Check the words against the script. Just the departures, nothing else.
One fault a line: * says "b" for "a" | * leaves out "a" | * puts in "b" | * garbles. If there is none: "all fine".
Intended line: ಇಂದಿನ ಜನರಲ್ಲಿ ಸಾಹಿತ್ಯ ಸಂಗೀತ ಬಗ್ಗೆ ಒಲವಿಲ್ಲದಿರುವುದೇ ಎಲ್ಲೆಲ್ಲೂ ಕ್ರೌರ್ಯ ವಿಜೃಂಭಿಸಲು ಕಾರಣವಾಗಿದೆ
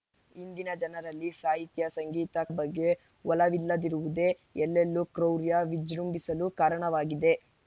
all fine